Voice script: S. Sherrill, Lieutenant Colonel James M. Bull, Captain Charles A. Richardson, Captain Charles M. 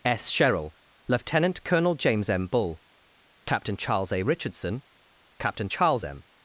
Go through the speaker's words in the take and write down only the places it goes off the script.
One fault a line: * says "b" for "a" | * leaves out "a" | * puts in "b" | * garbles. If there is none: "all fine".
all fine